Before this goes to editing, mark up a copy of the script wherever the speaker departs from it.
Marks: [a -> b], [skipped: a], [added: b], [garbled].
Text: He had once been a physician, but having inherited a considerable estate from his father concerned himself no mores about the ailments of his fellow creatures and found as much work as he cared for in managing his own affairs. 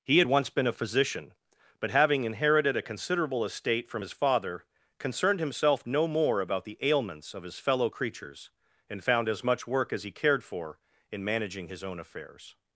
He had once been a physician, but having inherited a considerable estate from his father concerned himself no [mores -> more] about the ailments of his fellow creatures and found as much work as he cared for in managing his own affairs.